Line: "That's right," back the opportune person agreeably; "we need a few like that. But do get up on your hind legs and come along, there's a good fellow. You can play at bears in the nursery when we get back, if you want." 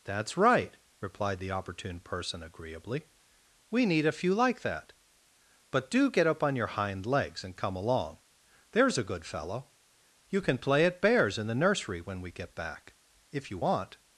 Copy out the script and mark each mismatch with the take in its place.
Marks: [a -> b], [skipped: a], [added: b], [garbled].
"That's right," [back -> replied] the opportune person agreeably; "we need a few like that. But do get up on your hind legs and come along, there's a good fellow. You can play at bears in the nursery when we get back, if you want."